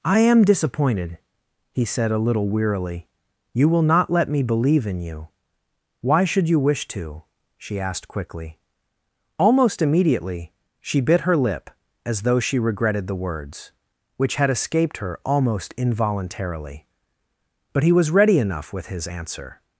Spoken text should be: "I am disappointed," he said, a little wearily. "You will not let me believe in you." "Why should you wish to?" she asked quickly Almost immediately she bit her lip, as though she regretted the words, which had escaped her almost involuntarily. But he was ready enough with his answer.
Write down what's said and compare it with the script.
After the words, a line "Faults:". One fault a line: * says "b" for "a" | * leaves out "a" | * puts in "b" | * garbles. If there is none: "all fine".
"I am disappointed," he said, a little wearily. "You will not let me believe in you." "Why should you wish to?" she asked quickly Almost immediately she bit her lip, as though she regretted the words, which had escaped her almost involuntarily. But he was ready enough with his answer.
Faults:
all fine